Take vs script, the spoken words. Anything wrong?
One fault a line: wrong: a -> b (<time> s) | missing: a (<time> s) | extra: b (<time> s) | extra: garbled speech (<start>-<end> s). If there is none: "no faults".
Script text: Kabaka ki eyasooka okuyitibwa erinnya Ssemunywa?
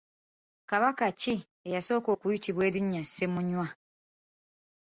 no faults